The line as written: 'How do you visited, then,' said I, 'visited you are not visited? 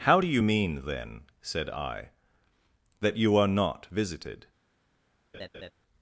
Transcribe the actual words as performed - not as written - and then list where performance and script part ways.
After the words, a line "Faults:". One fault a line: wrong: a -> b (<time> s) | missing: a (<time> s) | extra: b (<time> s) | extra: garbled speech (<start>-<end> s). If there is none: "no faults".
'How do you mean, then,' said I, 'that you are not visited?
Faults:
wrong: visited -> mean (0.4 s)
wrong: visited -> that (3.0 s)